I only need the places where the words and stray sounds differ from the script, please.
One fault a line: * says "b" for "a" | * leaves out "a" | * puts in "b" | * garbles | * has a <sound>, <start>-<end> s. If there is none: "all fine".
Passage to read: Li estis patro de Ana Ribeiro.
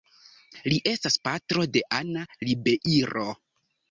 * says "estas" for "estis"